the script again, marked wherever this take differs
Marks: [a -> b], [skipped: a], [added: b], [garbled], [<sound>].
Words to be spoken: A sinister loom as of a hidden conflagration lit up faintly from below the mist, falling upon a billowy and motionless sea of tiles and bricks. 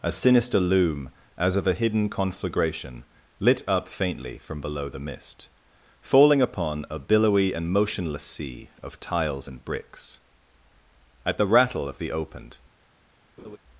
A sinister loom as of a hidden conflagration lit up faintly from below the mist, falling upon a billowy and motionless sea of tiles and bricks. [added: At the rattle of the opened] [laugh]